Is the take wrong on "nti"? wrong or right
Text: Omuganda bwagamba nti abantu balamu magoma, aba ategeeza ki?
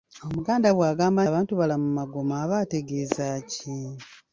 wrong